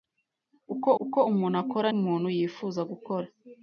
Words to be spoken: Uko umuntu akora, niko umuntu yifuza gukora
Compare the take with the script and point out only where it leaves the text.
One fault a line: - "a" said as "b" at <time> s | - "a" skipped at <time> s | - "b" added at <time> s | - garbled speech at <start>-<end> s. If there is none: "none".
- "uko" added at 1.0 s
- "niko" skipped at 1.9 s